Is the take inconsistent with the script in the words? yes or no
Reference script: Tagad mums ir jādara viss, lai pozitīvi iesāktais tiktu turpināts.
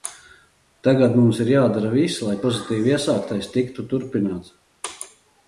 no